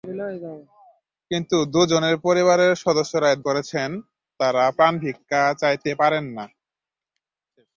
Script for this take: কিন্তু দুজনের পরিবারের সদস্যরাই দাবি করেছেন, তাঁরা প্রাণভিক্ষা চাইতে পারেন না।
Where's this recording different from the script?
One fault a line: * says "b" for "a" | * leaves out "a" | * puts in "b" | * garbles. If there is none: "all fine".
* leaves out "দাবি"